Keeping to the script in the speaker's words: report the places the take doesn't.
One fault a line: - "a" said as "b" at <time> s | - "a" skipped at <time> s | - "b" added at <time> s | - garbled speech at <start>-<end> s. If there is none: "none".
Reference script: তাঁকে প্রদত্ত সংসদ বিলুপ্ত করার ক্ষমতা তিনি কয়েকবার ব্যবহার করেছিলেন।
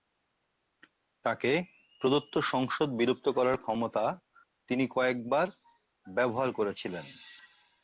none